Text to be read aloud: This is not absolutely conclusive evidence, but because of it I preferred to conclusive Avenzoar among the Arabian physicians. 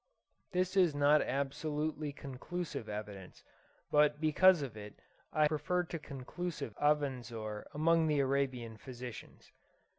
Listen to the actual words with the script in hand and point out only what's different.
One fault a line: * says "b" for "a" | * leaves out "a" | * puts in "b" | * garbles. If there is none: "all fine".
all fine